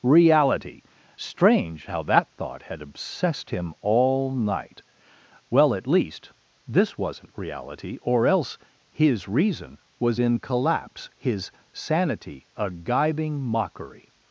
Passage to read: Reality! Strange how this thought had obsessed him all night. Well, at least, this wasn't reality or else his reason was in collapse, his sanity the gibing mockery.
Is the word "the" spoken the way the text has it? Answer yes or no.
no